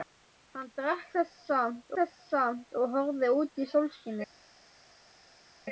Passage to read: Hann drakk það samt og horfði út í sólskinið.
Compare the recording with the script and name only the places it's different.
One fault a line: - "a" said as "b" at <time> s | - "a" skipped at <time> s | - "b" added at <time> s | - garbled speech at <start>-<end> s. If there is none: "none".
- "það samt" added at 2.0 s